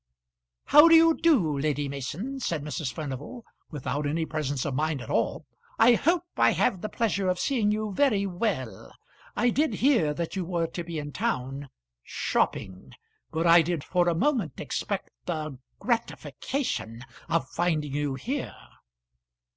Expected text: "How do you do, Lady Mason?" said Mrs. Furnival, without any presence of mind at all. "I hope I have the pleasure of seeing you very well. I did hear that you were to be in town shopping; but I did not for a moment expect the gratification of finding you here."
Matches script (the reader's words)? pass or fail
fail